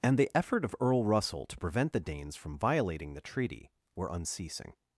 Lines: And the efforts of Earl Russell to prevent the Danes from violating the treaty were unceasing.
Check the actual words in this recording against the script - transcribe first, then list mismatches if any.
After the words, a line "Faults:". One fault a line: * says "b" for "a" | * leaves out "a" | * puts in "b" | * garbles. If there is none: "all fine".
And the effort of Earl Russell to prevent the Danes from violating the treaty were unceasing.
Faults:
* says "effort" for "efforts"